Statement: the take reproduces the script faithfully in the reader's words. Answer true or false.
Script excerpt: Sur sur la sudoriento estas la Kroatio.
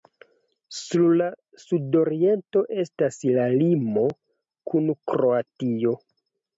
false